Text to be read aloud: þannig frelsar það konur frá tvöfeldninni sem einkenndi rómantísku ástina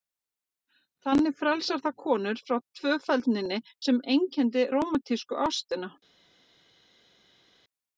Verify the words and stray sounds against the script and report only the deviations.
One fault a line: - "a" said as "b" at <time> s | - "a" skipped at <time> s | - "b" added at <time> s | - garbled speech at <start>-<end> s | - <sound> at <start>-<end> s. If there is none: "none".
none